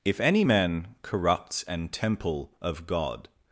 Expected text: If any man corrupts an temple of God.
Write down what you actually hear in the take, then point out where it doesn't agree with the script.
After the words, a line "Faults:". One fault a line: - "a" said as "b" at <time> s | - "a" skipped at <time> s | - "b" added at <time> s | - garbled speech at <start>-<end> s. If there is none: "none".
If any man corrupts an temple of God.
Faults:
none